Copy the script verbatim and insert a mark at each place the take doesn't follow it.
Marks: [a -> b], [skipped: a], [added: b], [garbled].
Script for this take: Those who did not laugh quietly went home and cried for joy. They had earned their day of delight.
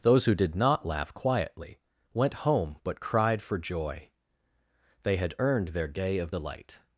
Those who did not laugh quietly went home [and -> but] cried for joy. They had earned their day of delight.